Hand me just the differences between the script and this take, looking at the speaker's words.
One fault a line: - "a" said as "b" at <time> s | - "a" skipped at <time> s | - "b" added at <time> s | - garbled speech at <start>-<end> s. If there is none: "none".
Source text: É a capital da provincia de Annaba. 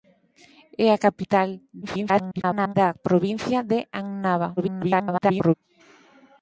- garbled speech at 1.8-2.7 s
- garbled speech at 4.6-5.5 s